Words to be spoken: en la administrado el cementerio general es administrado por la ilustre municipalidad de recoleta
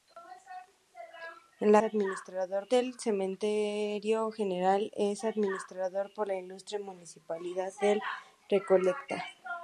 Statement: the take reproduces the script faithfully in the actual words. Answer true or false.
true